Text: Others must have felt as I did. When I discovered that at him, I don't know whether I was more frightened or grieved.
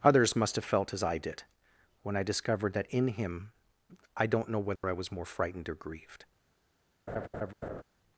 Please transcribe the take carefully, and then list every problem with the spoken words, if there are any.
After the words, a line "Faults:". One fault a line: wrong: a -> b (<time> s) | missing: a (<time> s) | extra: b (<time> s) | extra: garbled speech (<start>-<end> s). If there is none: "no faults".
Others must have felt as I did. When I discovered that in him, I don't know whether I was more frightened or grieved.
Faults:
wrong: at -> in (2.9 s)